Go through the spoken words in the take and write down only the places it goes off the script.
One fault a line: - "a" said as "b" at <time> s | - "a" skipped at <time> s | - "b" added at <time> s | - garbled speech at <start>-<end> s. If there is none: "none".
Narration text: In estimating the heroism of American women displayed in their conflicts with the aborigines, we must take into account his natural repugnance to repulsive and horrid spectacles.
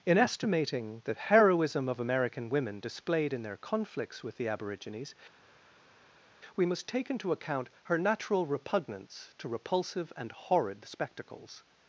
- "his" said as "her" at 7.8 s